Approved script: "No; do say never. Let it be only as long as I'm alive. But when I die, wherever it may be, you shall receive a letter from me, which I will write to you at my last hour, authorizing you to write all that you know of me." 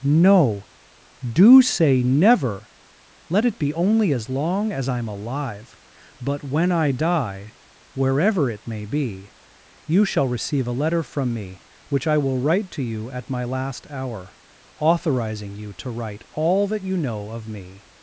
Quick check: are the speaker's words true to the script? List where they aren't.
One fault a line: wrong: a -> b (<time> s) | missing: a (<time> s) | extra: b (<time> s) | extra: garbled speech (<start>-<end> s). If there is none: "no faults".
no faults